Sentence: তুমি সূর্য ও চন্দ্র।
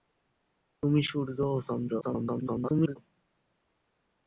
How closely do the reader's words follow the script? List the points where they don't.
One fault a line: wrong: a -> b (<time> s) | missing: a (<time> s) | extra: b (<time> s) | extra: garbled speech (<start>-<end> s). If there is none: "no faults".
extra: garbled speech (2.0-3.0 s)